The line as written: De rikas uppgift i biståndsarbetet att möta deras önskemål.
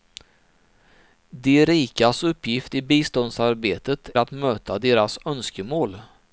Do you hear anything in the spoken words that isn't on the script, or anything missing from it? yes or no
no